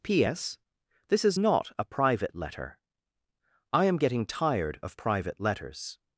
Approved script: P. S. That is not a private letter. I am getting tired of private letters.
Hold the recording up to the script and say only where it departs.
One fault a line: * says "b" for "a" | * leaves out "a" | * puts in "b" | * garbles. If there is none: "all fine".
* says "This" for "That"